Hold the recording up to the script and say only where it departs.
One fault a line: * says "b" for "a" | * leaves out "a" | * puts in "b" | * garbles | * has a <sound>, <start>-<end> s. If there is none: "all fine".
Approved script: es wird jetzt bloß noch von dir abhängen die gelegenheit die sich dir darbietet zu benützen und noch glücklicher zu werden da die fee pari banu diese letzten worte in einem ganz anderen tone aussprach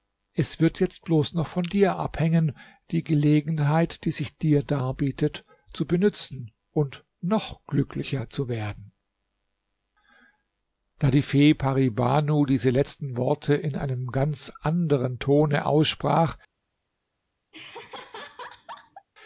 * has a laugh, 17.5-19.1 s